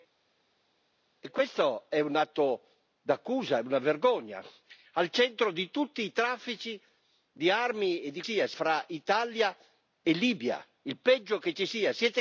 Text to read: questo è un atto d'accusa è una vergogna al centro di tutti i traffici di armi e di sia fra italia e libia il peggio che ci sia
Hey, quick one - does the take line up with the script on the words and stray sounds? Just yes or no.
yes